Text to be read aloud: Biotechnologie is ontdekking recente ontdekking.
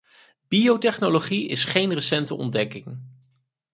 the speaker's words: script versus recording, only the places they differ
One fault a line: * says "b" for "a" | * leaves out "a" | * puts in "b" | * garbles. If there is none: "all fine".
* says "geen" for "ontdekking"